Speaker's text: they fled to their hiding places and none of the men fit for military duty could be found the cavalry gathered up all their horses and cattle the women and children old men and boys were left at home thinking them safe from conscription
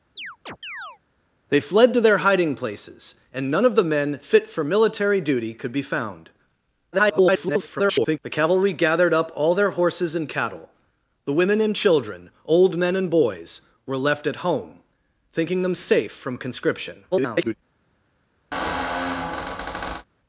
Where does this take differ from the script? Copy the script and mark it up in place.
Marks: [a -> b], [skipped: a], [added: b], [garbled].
they fled to their hiding places and none of the men fit for military duty could be found [garbled] the cavalry gathered up all their horses and cattle the women and children old men and boys were left at home thinking them safe from conscription [garbled]